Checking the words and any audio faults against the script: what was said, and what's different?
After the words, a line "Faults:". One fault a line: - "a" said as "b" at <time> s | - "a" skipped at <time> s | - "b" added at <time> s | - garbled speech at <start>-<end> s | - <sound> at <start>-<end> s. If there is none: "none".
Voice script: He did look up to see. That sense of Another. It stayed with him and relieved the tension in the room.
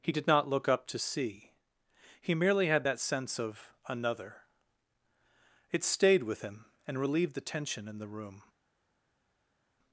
He did not look up to see. He merely had that sense of Another. It stayed with him and relieved the tension in the room.
Faults:
- "not" added at 0.2 s
- "He merely had" added at 2.2 s